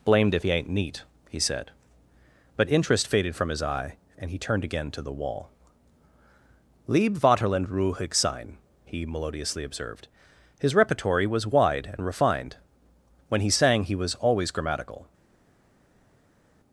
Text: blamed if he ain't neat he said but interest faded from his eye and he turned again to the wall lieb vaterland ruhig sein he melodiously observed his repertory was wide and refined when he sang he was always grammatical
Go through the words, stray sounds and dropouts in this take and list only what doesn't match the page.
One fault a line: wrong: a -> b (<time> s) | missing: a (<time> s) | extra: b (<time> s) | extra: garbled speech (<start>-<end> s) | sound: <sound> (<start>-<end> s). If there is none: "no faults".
no faults